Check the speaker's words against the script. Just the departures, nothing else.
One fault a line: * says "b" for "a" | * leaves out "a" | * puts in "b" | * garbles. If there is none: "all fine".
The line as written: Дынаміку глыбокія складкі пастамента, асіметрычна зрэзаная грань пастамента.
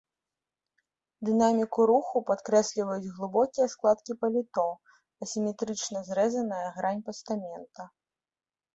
* puts in "руху падкрэсліваюць"
* says "паліто" for "пастамента"